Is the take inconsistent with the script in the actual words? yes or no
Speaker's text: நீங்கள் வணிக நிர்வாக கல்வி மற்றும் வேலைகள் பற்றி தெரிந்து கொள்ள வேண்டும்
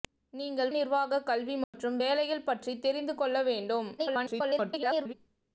yes